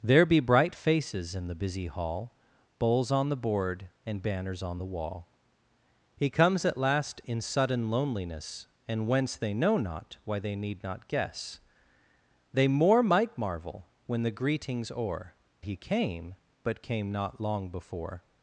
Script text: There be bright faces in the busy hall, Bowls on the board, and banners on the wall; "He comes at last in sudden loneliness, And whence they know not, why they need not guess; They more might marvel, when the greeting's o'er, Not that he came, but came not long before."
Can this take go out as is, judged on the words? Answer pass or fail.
fail